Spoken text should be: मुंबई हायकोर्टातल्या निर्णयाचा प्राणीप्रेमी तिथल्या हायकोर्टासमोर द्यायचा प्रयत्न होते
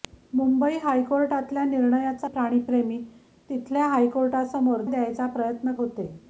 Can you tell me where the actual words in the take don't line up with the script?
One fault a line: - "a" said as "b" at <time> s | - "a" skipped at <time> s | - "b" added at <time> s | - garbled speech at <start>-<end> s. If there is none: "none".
none